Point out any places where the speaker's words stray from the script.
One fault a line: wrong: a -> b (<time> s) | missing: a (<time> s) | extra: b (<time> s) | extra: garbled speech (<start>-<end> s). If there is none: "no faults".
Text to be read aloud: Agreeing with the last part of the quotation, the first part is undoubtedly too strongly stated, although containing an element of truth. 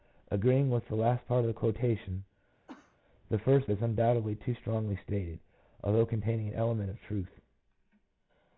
missing: part (3.7 s)